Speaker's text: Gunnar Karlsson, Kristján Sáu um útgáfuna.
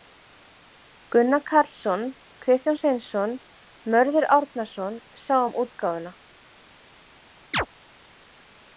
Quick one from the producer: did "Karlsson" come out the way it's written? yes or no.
yes